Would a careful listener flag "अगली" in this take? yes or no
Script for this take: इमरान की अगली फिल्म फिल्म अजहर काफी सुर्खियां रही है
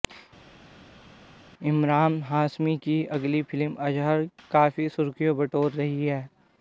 no